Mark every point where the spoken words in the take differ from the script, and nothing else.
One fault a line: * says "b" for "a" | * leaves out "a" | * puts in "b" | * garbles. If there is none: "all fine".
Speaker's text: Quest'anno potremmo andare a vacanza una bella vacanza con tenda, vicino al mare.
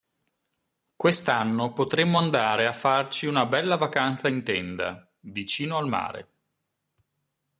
* says "farci" for "vacanza"
* says "in" for "con"